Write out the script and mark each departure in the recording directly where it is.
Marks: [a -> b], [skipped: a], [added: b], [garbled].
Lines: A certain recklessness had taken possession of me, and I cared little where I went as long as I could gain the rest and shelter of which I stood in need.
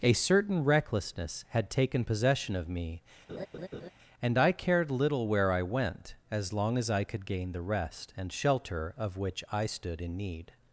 A certain recklessness had taken possession of me, and I cared little where I went as long as I could gain the rest and shelter of which I stood in need.